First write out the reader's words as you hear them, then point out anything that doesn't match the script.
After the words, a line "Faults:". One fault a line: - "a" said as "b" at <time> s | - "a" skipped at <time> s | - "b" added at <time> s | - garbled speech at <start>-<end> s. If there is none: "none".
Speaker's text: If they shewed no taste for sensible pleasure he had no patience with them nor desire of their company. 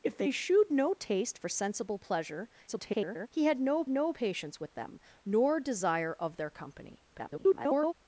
If they shewed no taste for sensible pleasure [garbled] he had no no patience with them nor desire of their company. [garbled]
Faults:
- garbled speech at 2.7-3.3 s
- "no" added at 3.9 s
- garbled speech at 7.1-7.9 s